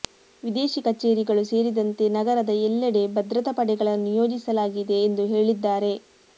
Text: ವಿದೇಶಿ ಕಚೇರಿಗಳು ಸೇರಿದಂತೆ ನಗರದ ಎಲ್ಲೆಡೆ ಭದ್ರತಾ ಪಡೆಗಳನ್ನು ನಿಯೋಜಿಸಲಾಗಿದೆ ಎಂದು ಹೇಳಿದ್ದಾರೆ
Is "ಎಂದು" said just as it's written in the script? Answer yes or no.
yes